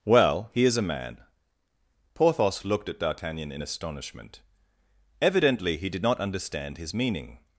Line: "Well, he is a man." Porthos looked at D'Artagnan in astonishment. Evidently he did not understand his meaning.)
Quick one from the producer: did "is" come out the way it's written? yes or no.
yes